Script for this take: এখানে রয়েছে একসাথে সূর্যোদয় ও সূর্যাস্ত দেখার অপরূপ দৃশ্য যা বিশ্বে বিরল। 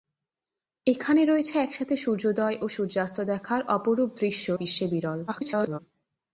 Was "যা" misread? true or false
true